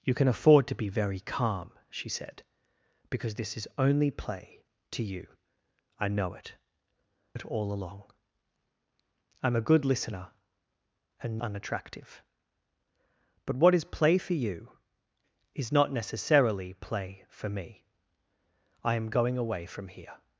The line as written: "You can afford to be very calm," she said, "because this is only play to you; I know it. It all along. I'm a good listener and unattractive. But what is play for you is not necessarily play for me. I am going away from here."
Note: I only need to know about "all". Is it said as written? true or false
true